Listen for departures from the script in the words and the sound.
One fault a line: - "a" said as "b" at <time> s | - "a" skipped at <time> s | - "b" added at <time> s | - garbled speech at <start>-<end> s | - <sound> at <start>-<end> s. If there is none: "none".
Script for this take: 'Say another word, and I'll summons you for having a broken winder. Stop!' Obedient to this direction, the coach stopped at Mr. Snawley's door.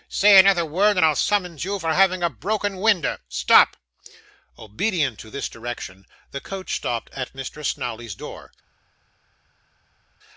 none